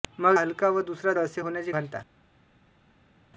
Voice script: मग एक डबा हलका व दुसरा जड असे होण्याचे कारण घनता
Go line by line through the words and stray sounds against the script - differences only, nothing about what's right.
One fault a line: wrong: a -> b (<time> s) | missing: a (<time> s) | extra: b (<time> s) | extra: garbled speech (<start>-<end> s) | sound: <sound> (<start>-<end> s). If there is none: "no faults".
missing: एक डबा (0.4 s)
missing: जड (1.1 s)
missing: कारण (1.7 s)